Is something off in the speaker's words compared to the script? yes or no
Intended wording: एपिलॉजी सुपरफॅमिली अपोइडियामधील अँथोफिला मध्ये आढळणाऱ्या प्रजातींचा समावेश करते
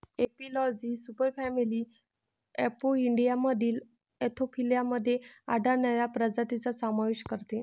no